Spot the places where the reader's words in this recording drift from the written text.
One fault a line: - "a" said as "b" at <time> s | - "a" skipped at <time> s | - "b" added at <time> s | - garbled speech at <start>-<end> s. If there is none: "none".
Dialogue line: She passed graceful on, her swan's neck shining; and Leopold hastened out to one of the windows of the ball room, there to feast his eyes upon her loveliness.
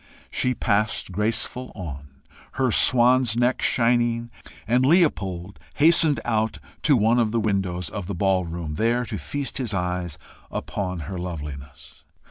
none